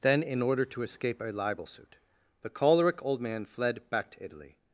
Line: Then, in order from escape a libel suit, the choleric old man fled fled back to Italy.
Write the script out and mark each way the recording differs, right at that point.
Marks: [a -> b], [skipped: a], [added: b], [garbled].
Then, in order [from -> to] escape a libel suit, the choleric old man fled [skipped: fled] back to Italy.